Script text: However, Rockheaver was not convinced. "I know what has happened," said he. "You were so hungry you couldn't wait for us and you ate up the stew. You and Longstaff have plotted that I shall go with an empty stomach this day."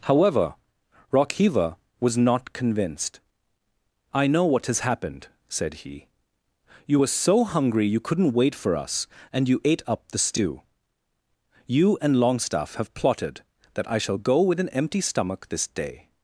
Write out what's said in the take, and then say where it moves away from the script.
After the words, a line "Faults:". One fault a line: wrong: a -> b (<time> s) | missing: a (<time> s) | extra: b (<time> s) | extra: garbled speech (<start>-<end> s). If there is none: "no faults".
However, Rockheaver was not convinced. "I know what has happened," said he. "You were so hungry you couldn't wait for us and you ate up the stew. You and Longstaff have plotted that I shall go with an empty stomach this day."
Faults:
no faults